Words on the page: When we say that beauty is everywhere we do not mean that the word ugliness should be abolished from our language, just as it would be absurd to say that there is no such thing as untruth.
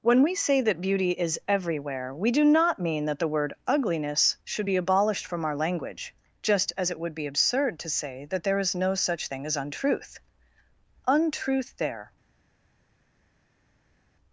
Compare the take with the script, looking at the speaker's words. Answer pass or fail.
fail